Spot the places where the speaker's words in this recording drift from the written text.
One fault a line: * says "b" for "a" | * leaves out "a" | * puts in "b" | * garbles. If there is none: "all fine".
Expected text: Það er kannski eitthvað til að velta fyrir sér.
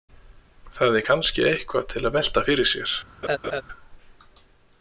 all fine